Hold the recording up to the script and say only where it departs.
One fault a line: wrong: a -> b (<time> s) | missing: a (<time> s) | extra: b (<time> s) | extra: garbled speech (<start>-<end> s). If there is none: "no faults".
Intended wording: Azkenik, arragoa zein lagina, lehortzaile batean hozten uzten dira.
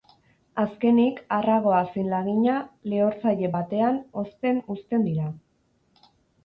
no faults